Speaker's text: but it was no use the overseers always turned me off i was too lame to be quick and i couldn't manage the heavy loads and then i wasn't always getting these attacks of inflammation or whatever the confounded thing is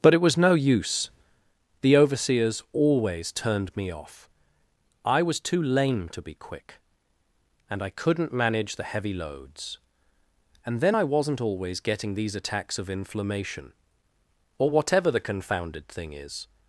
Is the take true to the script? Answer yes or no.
yes